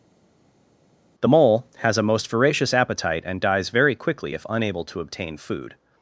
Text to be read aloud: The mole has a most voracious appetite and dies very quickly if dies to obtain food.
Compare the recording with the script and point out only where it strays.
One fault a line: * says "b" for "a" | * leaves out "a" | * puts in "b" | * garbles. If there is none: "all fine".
* says "unable" for "dies"